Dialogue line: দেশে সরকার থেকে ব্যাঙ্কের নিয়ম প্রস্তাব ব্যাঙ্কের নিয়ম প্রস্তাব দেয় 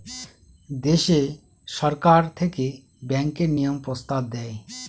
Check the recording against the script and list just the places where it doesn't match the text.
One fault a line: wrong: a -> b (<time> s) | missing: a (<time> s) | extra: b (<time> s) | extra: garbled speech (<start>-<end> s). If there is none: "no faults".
missing: ব্যাঙ্কের নিয়ম প্রস্তাব (4.2 s)